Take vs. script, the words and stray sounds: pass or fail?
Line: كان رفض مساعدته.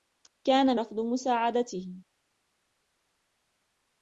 pass